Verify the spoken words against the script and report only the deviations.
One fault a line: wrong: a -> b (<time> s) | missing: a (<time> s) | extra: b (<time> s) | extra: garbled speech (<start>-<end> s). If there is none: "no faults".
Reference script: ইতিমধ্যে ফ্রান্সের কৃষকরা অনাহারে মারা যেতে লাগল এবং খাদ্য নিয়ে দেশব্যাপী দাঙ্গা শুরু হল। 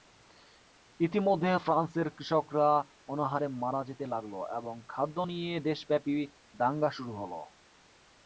no faults